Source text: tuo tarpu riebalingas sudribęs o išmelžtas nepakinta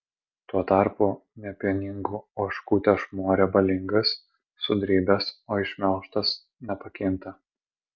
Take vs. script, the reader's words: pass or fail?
fail